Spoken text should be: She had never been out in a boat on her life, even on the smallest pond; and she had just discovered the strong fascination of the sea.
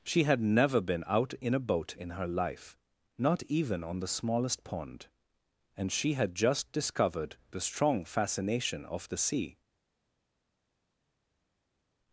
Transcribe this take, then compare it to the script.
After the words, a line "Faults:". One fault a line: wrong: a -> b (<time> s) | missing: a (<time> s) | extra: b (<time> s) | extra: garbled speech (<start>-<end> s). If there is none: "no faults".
She had never been out in a boat in her life, not even on the smallest pond; and she had just discovered the strong fascination of the sea.
Faults:
wrong: on -> in (2.0 s)
extra: not (3.2 s)